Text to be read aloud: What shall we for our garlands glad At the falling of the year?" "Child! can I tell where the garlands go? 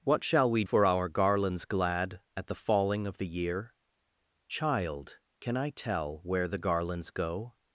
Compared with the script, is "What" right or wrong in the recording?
right